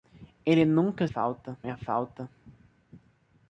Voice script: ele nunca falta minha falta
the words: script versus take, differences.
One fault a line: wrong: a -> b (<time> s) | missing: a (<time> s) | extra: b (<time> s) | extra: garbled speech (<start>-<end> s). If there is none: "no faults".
no faults